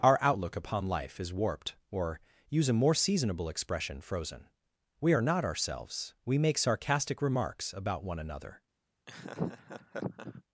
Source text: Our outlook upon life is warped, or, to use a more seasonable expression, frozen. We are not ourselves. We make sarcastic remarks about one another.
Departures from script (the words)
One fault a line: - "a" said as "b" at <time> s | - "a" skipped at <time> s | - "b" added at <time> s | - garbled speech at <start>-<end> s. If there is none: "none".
- "to" skipped at 2.2 s